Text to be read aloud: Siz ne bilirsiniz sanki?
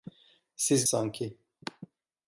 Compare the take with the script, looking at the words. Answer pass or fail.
fail